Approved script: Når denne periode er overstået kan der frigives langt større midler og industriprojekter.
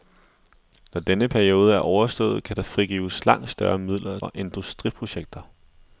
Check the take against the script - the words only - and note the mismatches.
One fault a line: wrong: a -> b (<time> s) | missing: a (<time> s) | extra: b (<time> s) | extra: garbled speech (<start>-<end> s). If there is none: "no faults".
no faults